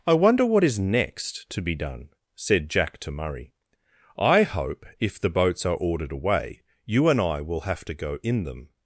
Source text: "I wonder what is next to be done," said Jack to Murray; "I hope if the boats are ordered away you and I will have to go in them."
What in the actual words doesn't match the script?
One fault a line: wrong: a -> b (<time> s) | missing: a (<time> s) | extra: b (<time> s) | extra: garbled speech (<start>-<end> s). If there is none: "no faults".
no faults